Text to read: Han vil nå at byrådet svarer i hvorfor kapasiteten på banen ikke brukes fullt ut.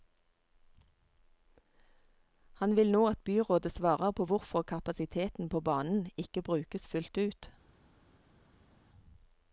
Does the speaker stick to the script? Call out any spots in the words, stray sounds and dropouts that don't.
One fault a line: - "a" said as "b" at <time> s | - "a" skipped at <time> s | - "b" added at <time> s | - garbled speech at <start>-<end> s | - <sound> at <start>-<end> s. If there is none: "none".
- "i" said as "på" at 4.1 s